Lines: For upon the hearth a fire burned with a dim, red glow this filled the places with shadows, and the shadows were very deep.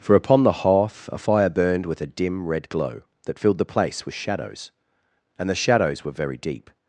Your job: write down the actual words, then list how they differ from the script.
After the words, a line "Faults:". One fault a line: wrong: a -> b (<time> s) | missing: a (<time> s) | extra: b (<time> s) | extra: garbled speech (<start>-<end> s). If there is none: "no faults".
For upon the hearth a fire burned with a dim, red glow that filled the place with shadows, and the shadows were very deep.
Faults:
wrong: this -> that (3.3 s)
wrong: places -> place (3.7 s)